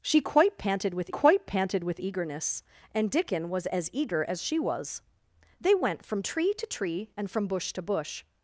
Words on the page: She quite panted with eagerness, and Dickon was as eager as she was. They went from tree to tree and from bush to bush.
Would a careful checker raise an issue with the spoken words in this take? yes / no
yes